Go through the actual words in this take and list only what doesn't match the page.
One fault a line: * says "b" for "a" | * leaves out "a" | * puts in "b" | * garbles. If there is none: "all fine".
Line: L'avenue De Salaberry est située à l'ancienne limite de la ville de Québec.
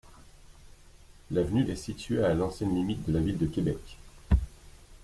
* leaves out "De Salaberry"